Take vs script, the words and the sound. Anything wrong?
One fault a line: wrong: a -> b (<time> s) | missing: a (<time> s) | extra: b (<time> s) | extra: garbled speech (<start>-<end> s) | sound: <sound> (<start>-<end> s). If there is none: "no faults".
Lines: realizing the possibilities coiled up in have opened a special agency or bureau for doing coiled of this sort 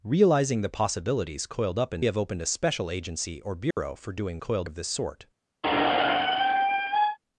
sound: dropout (3.7-3.8 s)
sound: squeak (5.6-7.2 s)